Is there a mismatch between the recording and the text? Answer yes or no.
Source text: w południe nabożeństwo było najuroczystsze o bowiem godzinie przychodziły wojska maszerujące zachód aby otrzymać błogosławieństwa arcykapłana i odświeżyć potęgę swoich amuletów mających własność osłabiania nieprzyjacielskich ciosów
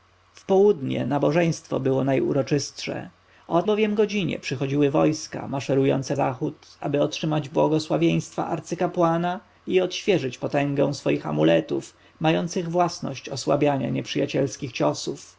no